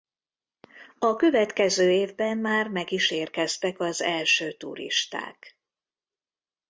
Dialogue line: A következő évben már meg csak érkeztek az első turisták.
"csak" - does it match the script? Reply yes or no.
no